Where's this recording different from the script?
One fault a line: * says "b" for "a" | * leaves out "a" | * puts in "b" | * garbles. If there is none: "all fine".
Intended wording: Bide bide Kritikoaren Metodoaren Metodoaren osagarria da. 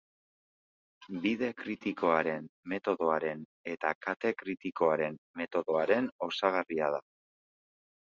* leaves out "bide"
* puts in "eta Kate Kritikoaren"